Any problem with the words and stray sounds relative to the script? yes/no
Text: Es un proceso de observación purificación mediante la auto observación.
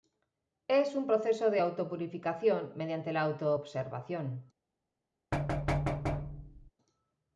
yes